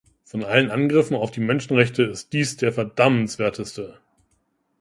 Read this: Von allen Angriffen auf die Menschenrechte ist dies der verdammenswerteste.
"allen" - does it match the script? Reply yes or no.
yes